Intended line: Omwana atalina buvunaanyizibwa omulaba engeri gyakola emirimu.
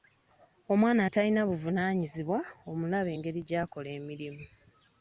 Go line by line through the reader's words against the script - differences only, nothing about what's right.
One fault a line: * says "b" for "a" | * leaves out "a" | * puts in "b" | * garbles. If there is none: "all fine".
all fine